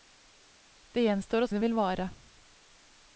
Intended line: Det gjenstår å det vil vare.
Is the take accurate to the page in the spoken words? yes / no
yes